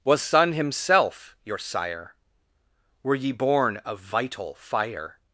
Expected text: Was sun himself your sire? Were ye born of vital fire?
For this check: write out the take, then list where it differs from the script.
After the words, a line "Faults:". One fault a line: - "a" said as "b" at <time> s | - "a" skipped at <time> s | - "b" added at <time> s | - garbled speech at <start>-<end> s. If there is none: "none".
Was sun himself your sire? Were ye born of vital fire?
Faults:
none